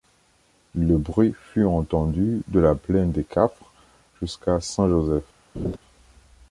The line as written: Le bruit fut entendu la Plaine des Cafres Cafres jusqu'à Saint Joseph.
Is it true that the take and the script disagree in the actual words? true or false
true